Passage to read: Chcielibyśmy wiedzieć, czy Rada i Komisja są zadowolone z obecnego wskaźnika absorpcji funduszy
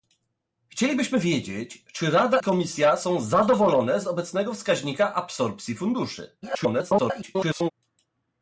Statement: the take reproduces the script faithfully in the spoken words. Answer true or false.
false